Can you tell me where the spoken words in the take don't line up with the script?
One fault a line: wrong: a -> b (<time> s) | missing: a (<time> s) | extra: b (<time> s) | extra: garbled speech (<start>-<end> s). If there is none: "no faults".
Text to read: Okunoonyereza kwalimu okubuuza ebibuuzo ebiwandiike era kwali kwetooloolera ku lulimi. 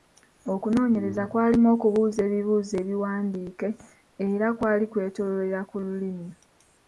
no faults